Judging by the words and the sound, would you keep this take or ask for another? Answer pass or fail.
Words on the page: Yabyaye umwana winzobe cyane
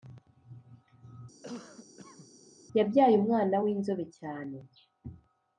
fail